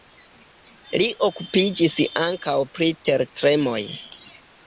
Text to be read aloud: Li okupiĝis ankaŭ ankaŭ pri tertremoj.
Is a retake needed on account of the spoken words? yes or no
yes